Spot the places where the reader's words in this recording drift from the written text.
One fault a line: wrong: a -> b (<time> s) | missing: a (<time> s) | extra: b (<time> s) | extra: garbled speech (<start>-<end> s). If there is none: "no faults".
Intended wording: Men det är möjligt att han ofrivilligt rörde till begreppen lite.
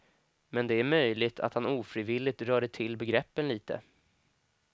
no faults